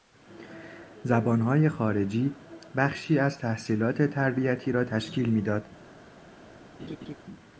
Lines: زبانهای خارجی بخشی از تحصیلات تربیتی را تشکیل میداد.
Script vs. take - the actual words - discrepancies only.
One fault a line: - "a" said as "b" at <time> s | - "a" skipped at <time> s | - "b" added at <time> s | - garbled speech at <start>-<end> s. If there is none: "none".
none